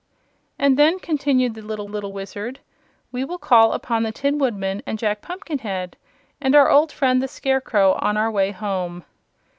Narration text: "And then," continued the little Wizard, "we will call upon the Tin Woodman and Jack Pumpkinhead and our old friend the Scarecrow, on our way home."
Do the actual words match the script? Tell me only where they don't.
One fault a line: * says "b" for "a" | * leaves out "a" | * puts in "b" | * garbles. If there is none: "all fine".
* puts in "little"